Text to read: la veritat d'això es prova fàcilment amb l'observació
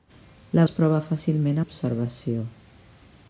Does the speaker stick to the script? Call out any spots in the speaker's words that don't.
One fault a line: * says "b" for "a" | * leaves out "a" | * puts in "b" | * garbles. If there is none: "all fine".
* leaves out "veritat d'això"
* leaves out "amb"